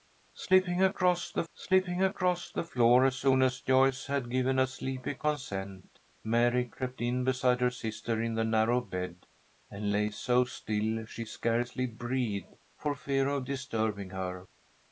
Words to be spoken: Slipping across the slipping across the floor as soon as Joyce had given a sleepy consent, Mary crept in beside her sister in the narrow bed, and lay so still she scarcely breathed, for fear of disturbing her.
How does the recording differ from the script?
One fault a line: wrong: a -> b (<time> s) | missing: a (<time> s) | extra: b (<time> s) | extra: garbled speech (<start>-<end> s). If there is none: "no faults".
no faults